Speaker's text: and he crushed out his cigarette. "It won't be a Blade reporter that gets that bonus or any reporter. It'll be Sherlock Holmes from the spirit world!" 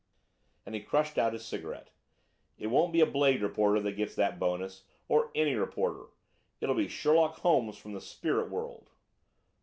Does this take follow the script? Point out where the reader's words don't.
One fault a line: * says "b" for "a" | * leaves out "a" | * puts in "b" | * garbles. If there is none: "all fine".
all fine